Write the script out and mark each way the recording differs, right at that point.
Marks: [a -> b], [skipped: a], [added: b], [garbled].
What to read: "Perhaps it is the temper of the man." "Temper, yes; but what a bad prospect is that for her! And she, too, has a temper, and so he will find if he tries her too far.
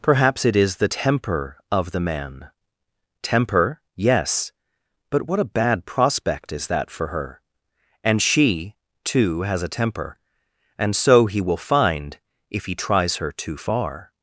"Perhaps it is the temper of the man." "Temper, yes; but what a bad prospect is that for her! And she, too, has a temper, and so he will find if he tries her too far.